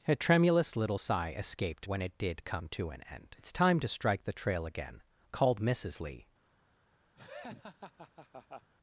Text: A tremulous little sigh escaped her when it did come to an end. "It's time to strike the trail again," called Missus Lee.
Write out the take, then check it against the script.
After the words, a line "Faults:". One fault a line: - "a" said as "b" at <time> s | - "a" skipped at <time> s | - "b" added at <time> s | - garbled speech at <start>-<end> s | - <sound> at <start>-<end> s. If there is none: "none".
A tremulous little sigh escaped when it did come to an end. "It's time to strike the trail again," called Missus Lee.
Faults:
- "her" skipped at 1.9 s
- laugh at 7.1-8.7 s